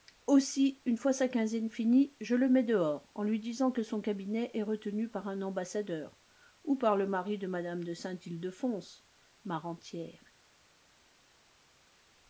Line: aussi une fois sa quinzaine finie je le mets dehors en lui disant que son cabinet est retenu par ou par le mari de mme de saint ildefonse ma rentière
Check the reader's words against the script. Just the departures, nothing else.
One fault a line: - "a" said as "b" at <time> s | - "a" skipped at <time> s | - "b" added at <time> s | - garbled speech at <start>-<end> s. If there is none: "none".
- "un ambassadeur" added at 5.3 s